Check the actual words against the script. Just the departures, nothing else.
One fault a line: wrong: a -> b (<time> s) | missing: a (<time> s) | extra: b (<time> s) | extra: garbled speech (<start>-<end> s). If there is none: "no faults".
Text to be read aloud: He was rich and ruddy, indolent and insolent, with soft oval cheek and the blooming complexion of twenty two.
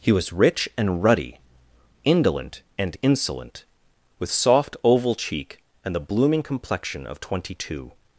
no faults